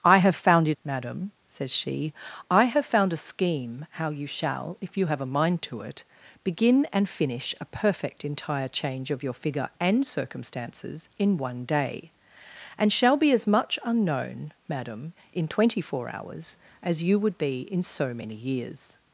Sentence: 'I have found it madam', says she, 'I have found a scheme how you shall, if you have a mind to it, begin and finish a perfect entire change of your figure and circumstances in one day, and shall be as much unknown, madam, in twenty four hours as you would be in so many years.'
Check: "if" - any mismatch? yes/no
no